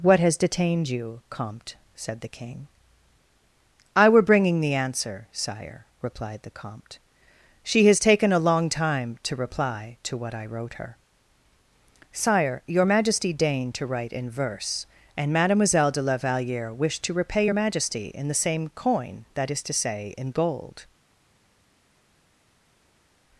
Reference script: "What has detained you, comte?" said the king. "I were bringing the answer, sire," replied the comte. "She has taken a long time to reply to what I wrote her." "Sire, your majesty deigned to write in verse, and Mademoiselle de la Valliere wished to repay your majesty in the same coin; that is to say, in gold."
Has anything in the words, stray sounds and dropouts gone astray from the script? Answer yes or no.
no